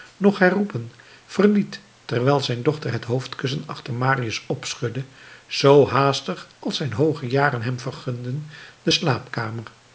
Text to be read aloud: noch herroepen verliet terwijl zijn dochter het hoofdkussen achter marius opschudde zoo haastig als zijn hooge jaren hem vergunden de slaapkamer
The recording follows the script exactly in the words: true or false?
true